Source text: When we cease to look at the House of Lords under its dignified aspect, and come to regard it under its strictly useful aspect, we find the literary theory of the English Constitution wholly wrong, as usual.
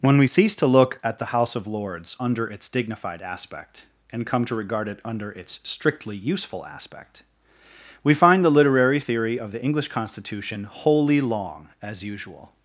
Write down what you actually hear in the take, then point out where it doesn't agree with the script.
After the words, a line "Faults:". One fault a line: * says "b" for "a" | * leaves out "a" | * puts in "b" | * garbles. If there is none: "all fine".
When we cease to look at the House of Lords under its dignified aspect, and come to regard it under its strictly useful aspect, we find the literary theory of the English Constitution wholly long, as usual.
Faults:
* says "long" for "wrong"